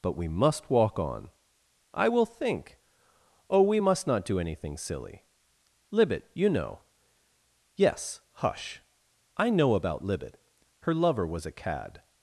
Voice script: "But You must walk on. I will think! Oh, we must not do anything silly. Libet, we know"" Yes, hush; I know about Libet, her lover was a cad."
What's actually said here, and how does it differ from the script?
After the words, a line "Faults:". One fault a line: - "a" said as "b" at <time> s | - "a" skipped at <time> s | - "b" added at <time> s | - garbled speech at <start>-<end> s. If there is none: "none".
"But We must walk on. I will think! Oh, we must not do anything silly. Libet, you know"" Yes, hush; I know about Libet, her lover was a cad."
Faults:
- "You" said as "We" at 0.1 s
- "we" said as "you" at 6.3 s